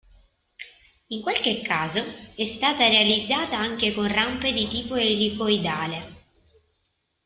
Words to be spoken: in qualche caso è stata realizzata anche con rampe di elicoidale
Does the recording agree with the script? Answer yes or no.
no